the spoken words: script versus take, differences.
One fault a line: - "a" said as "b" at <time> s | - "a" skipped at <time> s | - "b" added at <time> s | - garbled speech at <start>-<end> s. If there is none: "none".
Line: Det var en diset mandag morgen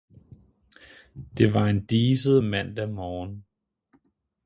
none